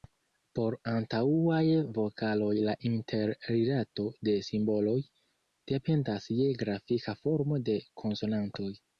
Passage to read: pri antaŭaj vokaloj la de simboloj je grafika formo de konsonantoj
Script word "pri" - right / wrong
wrong